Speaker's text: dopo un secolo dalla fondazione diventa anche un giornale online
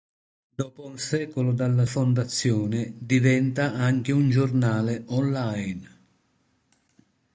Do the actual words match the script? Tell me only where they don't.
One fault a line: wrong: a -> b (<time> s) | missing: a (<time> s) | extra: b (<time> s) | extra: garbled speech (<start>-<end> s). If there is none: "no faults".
no faults